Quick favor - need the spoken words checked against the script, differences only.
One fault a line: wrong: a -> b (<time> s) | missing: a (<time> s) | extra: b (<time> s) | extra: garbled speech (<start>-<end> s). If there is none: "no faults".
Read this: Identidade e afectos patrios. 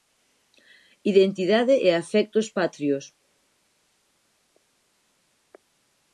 no faults